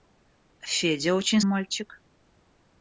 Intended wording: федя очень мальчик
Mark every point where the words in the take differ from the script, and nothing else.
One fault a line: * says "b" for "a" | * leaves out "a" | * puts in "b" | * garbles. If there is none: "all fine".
all fine